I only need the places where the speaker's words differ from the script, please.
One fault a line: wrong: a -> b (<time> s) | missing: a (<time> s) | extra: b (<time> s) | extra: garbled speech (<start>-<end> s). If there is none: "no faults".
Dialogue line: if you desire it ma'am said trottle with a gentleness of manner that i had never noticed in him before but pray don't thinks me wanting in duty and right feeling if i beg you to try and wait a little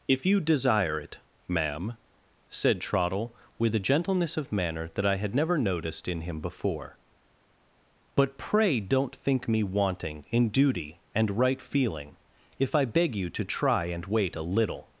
wrong: thinks -> think (9.2 s)